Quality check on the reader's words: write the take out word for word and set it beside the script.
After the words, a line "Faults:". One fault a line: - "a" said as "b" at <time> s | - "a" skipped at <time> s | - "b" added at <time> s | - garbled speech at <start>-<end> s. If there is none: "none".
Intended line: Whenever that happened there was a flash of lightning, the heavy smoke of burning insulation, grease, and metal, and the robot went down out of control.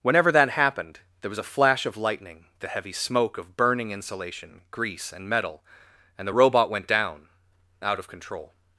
Whenever that happened there was a flash of lightning, the heavy smoke of burning insulation, grease, and metal, and the robot went down out of control.
Faults:
none